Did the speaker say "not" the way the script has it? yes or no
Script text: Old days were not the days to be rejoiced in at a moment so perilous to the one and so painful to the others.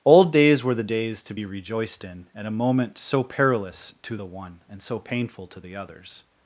no